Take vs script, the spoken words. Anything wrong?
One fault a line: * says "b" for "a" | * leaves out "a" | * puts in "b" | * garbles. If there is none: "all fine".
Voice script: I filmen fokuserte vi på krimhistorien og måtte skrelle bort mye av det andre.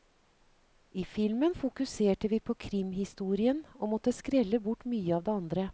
all fine